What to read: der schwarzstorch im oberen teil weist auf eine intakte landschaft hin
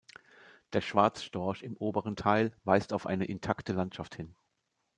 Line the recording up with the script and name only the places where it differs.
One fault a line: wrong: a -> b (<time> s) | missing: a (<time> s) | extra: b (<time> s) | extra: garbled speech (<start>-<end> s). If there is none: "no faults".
no faults